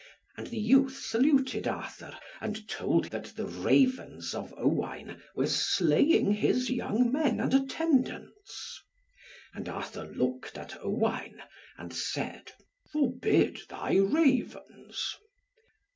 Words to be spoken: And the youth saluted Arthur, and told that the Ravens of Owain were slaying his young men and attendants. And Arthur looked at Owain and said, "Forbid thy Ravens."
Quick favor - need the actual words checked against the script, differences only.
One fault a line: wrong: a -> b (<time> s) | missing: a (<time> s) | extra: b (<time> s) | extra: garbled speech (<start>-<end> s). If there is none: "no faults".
no faults